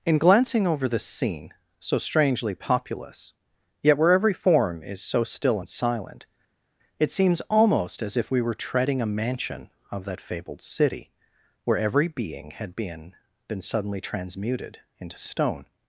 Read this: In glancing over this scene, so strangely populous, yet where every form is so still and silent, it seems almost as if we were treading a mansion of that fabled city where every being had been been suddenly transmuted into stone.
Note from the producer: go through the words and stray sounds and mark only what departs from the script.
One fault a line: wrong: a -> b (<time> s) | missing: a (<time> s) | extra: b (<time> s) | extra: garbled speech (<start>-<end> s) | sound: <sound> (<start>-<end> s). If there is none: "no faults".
no faults